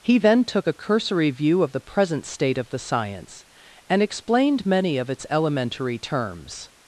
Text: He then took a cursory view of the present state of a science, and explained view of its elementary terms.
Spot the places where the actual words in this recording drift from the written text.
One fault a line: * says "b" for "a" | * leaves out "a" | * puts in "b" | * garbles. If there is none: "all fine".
* says "the" for "a"
* says "many" for "view"